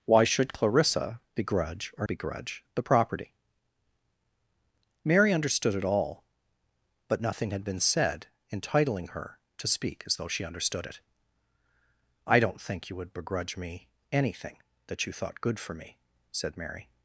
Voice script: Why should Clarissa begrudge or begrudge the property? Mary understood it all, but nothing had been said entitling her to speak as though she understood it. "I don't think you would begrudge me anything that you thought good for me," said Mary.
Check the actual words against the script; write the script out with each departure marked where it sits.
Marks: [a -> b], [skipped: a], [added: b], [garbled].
Why should Clarissa begrudge or begrudge the property? Mary understood it all, but nothing had been said entitling her to speak as though she understood it. "I don't think you would begrudge me anything that you thought good for me," said Mary.